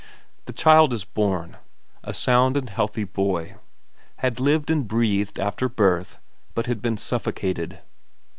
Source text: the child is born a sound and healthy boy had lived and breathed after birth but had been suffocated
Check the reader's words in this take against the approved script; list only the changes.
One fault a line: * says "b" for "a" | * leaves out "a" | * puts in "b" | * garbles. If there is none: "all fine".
all fine